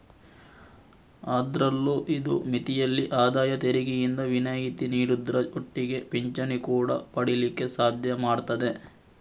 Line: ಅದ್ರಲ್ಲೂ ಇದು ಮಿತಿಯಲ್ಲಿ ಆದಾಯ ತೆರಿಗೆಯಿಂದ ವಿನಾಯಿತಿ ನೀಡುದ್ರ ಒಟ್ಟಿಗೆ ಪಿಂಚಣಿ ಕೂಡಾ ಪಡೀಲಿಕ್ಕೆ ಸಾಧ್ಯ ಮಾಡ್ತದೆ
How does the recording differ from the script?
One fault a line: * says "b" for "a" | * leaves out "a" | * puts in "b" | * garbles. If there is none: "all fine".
all fine